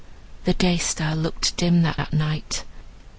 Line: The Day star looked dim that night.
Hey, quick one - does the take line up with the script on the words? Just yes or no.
no